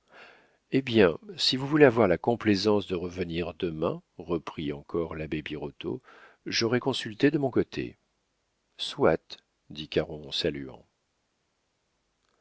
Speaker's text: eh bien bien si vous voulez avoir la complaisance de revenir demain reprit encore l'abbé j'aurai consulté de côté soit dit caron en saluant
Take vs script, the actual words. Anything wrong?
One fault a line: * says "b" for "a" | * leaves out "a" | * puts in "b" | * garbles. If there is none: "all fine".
* leaves out "bien"
* puts in "birotteau"
* puts in "mon"